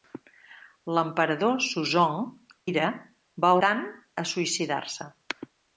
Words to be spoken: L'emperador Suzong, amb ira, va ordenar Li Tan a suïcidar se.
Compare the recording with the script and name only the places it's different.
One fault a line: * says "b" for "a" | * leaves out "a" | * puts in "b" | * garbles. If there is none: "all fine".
* leaves out "amb"
* leaves out "ordenar Li"